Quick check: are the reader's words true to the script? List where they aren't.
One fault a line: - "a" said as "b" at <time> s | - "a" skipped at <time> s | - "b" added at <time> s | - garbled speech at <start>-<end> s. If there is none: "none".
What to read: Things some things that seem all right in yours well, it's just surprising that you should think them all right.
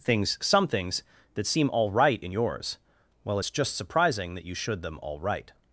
- "think" skipped at 4.8 s